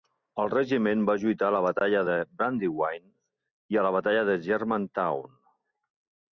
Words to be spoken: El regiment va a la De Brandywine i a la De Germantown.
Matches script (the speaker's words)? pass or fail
fail